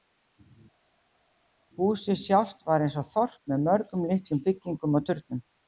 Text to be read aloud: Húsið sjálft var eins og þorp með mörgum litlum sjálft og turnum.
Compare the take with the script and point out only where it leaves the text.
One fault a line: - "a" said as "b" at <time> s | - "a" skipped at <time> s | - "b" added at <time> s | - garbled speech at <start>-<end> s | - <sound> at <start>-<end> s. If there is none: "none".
- "sjálft" said as "byggingum" at 4.5 s